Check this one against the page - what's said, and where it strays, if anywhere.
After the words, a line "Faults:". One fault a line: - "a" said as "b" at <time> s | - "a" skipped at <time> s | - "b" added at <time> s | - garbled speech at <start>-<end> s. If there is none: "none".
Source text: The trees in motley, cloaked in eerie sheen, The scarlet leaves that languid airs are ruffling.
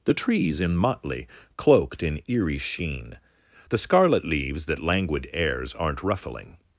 The trees in motley, cloaked in eerie sheen, The scarlet leaves that languid airs aren't ruffling.
Faults:
- "are" said as "aren't" at 5.7 s